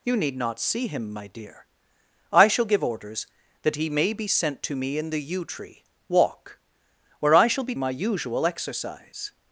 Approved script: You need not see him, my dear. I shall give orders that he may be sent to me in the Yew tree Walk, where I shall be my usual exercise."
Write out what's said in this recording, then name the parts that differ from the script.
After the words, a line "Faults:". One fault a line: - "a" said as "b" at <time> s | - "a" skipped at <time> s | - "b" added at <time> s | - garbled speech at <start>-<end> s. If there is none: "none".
You need not see him, my dear. I shall give orders that he may be sent to me in the Yew tree Walk, where I shall be my usual exercise."
Faults:
none